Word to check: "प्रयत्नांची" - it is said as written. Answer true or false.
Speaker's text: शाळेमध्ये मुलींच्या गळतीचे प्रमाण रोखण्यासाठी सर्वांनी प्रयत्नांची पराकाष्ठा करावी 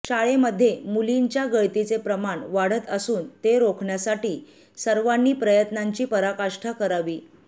true